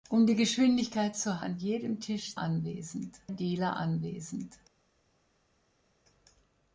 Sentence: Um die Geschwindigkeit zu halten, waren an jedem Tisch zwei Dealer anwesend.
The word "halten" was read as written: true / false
false